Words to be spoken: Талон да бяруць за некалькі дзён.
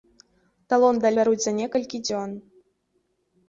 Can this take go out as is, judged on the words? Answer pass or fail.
pass